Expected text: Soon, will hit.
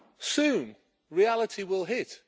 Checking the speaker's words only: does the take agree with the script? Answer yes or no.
no